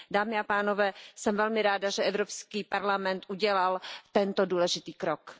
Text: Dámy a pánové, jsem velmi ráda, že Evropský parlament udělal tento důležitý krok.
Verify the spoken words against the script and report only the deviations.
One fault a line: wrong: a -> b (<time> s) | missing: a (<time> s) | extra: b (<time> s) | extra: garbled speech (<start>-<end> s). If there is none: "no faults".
no faults